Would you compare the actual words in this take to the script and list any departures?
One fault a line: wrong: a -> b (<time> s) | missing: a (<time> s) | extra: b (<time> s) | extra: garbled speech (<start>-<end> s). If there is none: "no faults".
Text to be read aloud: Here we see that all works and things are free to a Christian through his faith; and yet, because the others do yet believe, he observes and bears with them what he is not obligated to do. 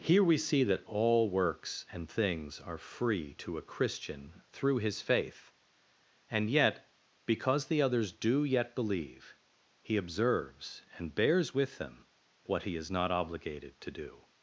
no faults